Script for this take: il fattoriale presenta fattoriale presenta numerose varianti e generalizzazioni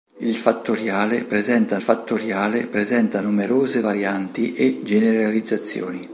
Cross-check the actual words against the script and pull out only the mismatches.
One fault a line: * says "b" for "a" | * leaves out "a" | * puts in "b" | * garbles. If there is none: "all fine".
all fine